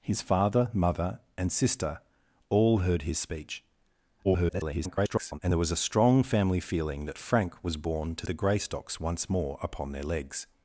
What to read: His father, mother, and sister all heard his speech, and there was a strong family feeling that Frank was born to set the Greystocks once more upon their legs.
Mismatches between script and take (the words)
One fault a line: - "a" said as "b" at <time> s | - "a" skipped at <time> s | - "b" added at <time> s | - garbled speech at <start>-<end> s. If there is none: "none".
- garbled speech at 4.2-5.4 s
- "set" skipped at 8.3 s